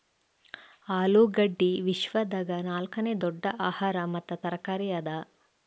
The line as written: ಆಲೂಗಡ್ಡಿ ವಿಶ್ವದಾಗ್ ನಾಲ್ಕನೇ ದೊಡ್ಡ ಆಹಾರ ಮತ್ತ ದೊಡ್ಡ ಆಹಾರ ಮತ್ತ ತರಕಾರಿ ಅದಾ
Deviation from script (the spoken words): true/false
true